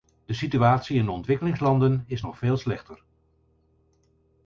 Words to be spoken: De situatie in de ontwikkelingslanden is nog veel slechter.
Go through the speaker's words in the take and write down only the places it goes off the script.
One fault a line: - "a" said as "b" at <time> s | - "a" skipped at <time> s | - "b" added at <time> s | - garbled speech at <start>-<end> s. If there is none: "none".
none